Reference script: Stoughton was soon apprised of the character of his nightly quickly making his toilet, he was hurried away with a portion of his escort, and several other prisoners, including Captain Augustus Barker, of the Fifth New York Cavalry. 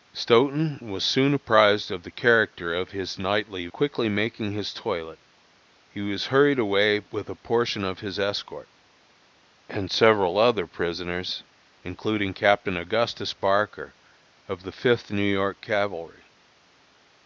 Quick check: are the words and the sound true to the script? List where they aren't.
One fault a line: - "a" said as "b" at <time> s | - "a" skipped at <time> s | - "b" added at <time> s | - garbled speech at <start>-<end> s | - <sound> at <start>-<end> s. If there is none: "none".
none